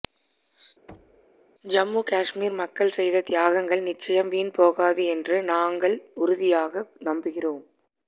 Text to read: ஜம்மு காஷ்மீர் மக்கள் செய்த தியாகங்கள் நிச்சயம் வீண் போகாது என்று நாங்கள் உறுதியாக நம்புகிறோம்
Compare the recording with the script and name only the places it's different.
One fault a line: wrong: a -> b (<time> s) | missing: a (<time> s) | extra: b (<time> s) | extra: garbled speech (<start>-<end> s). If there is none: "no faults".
no faults